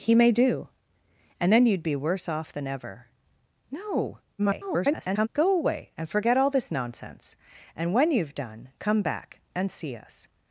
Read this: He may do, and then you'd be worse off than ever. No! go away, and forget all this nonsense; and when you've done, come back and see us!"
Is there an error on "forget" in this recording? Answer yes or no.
no